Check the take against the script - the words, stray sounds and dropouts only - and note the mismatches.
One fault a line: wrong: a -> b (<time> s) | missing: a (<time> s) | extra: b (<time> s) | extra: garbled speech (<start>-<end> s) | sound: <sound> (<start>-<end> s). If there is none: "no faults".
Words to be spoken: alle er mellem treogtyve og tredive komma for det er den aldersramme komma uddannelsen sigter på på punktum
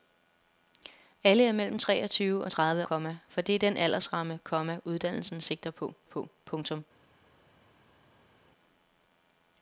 no faults